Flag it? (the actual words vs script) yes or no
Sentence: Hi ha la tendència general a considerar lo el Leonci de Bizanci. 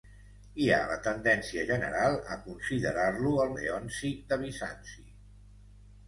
no